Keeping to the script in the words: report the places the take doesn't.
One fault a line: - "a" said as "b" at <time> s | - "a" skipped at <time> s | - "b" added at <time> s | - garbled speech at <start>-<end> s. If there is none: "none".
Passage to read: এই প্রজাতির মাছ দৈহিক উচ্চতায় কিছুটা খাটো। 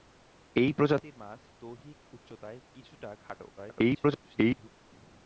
- garbled speech at 3.6-4.7 s